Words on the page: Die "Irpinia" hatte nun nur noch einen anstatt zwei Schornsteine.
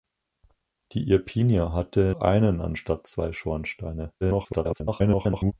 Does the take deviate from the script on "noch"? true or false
true